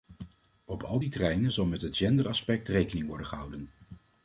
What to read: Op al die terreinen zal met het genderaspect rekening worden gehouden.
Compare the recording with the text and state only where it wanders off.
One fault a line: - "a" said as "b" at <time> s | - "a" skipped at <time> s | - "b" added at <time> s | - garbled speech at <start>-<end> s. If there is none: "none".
none